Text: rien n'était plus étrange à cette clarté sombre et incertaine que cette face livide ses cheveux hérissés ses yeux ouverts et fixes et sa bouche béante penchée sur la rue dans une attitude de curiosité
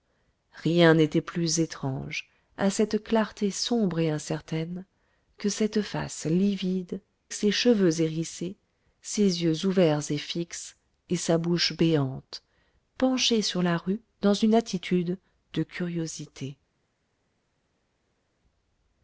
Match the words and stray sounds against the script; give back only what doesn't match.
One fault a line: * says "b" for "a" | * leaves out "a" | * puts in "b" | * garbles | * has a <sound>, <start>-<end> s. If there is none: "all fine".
all fine